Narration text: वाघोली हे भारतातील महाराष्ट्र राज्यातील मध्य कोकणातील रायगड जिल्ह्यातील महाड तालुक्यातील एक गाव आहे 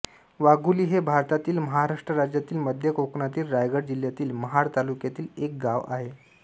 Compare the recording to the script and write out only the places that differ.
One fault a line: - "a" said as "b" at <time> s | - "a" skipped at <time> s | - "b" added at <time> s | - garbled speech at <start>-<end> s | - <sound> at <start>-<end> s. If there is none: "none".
none